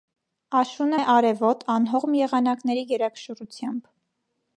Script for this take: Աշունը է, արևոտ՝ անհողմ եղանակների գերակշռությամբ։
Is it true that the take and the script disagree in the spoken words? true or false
false